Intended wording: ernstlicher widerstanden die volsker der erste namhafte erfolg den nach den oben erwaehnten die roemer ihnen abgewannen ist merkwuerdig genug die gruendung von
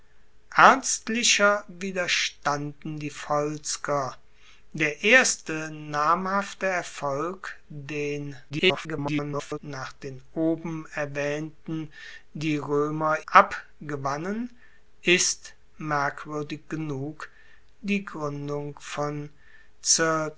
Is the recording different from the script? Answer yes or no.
yes